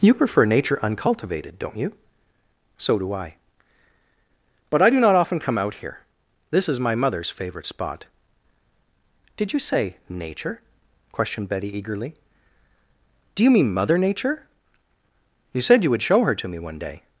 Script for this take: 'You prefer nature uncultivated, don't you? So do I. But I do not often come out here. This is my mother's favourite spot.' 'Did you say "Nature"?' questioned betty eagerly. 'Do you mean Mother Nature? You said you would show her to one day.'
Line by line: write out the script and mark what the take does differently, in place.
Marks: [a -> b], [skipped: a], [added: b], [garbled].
'You prefer nature uncultivated, don't you? So do I. But I do not often come out here. This is my mother's favourite spot.' 'Did you say "Nature"?' questioned betty eagerly. 'Do you mean Mother Nature? You said you would show her to [added: me] one day.'